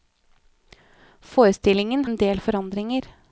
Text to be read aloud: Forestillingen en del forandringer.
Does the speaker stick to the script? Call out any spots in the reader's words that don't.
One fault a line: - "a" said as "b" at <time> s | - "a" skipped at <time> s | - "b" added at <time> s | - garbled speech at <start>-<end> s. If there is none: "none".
none